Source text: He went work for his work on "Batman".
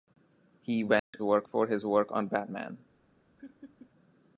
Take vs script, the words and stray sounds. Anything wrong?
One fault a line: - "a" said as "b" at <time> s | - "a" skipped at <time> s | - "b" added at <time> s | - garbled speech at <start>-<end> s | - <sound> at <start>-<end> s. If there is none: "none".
- dropout at 1.0-1.1 s
- laugh at 3.4-3.9 s